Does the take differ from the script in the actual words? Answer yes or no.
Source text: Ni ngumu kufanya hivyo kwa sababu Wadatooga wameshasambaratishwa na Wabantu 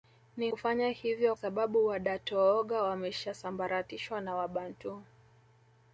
yes